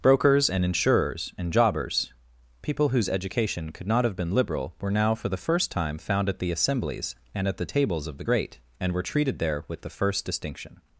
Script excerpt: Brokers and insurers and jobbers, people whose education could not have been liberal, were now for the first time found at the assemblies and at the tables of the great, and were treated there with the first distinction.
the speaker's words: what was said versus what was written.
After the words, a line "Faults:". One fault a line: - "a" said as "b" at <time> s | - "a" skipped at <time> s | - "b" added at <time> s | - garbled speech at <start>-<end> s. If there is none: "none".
Brokers and insurers and jobbers, people whose education could not have been liberal, were now for the first time found at the assemblies and at the tables of the great, and were treated there with the first distinction.
Faults:
none